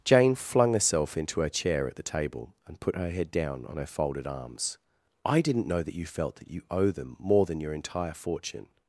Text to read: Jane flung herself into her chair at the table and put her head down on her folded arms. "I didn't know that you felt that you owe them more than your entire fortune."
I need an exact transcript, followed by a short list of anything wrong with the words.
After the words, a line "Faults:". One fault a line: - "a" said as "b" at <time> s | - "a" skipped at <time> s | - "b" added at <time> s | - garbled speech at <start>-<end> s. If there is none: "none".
Jane flung herself into her chair at the table and put her head down on her folded arms. "I didn't know that you felt that you owe them more than your entire fortune."
Faults:
none